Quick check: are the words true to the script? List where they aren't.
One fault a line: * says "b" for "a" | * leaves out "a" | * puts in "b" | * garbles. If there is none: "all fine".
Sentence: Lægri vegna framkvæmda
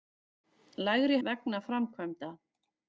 all fine